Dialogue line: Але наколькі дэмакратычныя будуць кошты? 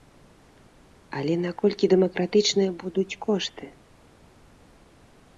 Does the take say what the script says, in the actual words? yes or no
yes